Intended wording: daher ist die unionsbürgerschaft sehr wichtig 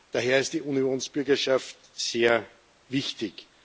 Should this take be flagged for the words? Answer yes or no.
no